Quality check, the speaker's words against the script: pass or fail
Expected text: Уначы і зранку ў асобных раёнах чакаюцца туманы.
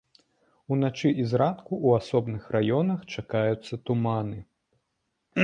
pass